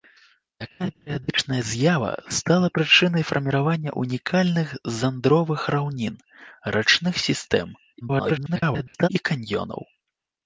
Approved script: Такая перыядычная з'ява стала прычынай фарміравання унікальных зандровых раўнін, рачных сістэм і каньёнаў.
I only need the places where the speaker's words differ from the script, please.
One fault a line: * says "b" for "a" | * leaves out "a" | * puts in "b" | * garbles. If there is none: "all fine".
* garbles